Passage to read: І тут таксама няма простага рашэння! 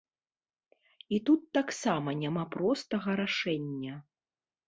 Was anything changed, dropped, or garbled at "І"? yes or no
no